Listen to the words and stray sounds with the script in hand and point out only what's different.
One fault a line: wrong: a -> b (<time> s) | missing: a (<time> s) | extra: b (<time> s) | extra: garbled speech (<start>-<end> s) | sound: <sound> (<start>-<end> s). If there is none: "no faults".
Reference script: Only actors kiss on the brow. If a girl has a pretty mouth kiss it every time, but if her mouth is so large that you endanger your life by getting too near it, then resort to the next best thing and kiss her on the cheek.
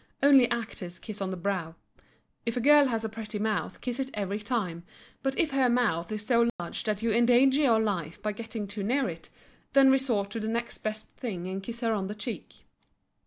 sound: dropout (6.5-6.6 s)